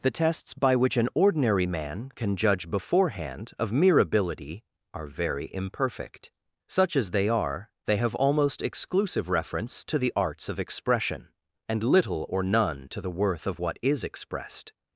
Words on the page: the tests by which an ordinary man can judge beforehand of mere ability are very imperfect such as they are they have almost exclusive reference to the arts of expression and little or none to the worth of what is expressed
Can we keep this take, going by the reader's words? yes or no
yes